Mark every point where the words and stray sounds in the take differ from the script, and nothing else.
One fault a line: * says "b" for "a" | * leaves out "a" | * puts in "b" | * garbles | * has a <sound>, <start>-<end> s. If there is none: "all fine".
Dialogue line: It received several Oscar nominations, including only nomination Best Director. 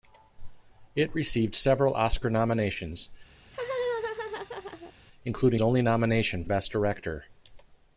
* has a laugh, 3.4-4.9 s